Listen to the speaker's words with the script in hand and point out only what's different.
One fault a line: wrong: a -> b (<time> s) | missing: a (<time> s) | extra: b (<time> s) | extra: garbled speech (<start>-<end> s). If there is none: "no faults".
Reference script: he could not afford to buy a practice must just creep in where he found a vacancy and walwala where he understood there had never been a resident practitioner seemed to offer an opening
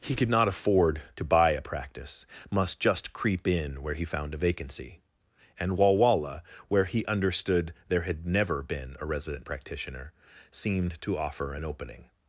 no faults